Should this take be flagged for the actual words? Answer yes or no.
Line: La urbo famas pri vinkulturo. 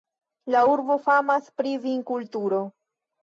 no